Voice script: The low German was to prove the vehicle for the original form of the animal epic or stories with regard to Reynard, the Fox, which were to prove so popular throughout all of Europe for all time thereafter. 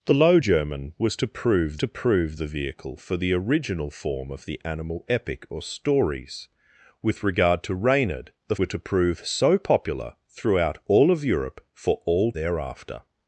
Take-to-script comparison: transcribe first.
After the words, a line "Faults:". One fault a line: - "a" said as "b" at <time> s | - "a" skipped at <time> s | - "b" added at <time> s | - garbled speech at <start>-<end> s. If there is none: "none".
The low German was to prove to prove the vehicle for the original form of the animal epic or stories with regard to Reynard, the Were to prove so popular throughout all of Europe for all thereafter.
Faults:
- "to prove" added at 1.8 s
- "Fox which" skipped at 8.5 s
- "time" skipped at 12.3 s